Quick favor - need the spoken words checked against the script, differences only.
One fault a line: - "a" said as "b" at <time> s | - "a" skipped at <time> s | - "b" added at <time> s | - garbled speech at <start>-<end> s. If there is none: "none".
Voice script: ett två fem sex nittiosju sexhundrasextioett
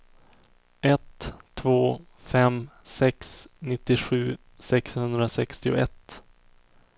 none